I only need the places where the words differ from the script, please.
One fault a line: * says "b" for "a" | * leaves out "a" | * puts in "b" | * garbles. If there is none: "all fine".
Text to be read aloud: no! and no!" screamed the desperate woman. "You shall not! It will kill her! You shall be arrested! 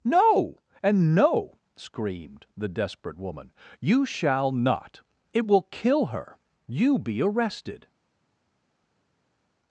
* leaves out "shall"